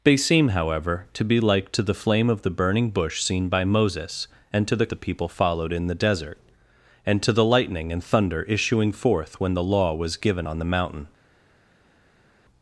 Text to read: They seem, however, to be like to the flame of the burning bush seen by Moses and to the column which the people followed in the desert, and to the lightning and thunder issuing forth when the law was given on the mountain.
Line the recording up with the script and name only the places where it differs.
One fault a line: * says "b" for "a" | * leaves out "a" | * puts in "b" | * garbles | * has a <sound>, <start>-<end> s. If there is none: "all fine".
* leaves out "column which"